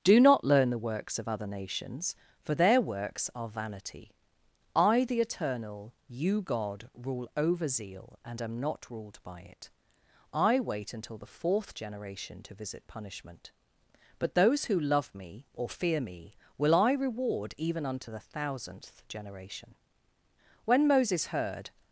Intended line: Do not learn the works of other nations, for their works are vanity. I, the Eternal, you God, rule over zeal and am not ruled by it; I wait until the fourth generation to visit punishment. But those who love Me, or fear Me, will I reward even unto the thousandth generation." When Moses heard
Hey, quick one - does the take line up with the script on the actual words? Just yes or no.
yes